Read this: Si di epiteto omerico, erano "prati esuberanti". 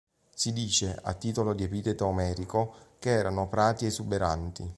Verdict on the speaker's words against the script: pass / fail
fail